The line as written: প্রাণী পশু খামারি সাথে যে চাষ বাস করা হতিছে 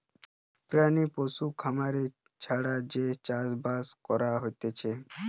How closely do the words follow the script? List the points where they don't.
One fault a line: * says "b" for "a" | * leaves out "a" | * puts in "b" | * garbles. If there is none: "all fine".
* says "ছাড়া" for "সাথে"